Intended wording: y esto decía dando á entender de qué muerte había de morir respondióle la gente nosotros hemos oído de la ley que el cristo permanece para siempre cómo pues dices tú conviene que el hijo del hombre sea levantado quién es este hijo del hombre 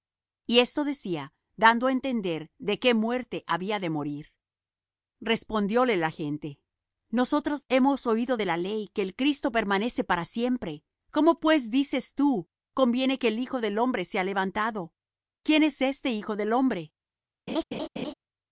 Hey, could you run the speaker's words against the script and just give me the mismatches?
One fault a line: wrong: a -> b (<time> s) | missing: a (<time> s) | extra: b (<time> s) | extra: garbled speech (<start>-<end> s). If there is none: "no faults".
no faults